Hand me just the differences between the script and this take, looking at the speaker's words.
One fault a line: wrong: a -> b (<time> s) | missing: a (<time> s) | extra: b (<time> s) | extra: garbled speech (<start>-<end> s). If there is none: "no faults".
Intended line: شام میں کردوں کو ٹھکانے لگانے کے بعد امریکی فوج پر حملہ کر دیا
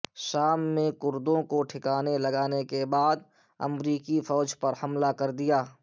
no faults